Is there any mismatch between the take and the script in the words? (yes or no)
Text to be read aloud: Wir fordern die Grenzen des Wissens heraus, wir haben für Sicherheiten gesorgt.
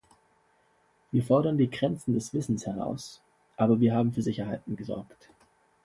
yes